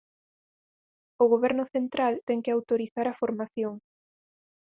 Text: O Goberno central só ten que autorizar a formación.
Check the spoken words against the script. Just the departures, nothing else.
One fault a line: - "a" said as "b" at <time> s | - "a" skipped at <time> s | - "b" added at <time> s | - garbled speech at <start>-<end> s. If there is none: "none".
- "só" skipped at 2.1 s